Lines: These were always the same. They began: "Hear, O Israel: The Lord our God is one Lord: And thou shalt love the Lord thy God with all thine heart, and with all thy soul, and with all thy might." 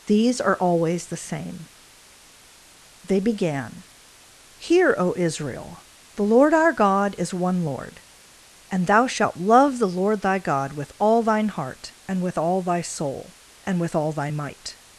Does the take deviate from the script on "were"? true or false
true